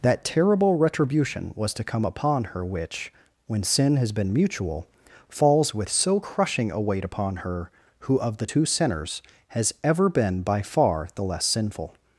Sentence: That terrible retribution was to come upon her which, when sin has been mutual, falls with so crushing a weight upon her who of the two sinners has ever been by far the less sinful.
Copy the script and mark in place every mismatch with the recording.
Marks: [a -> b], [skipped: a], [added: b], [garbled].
That terrible retribution was to come upon her which, when sin has been mutual, falls with so crushing a weight upon her who of the two sinners has ever been by far the less sinful.